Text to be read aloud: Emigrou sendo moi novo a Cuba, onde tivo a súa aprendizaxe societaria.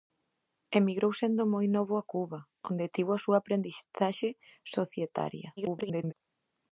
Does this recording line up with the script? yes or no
no